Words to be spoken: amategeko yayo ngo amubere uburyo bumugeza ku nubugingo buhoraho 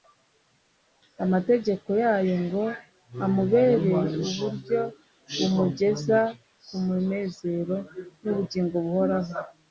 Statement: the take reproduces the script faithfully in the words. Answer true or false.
false